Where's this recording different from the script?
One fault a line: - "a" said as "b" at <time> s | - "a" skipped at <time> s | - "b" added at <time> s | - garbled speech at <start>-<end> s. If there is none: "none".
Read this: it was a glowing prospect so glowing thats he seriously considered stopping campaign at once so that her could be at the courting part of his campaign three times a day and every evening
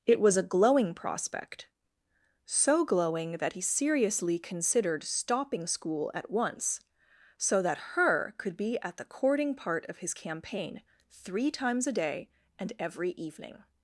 - "thats" said as "that" at 3.3 s
- "campaign" said as "school" at 5.7 s